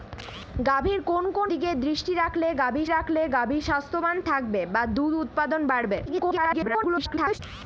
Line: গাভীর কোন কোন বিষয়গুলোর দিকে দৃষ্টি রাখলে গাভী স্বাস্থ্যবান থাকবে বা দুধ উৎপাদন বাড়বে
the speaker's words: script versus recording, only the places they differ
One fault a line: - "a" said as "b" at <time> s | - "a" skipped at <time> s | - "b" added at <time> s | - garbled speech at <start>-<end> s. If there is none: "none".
- "বিষয়গুলোর" skipped at 1.5 s
- "রাখলে গাভী" added at 2.9 s
- garbled speech at 6.1-7.4 s